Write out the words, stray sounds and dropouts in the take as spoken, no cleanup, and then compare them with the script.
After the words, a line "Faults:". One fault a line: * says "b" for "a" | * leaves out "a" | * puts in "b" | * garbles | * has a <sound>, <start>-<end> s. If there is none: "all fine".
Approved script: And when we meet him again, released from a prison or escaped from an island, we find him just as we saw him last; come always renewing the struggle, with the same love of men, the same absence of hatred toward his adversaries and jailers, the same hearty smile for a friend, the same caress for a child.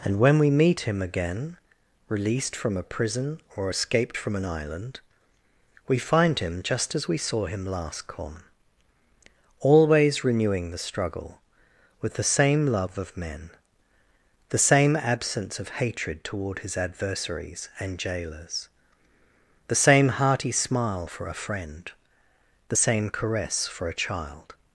And when we meet him again, released from a prison or escaped from an island, we find him just as we saw him last; come always renewing the struggle, with the same love of men, the same absence of hatred toward his adversaries and jailers, the same hearty smile for a friend, the same caress for a child.
Faults:
all fine